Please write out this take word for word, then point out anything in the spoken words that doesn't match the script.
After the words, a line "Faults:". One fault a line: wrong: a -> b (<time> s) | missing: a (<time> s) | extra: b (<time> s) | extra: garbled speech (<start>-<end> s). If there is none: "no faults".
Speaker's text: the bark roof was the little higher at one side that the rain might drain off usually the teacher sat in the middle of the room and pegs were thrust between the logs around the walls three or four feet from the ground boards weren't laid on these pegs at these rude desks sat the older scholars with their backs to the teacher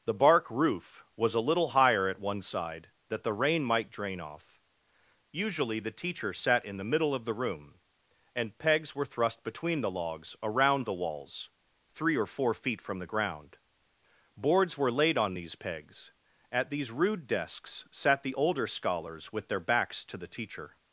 the bark roof was a little higher at one side that the rain might drain off usually the teacher sat in the middle of the room and pegs were thrust between the logs around the walls three or four feet from the ground boards were laid on these pegs at these rude desks sat the older scholars with their backs to the teacher
Faults:
wrong: the -> a (1.4 s)
wrong: weren't -> were (14.8 s)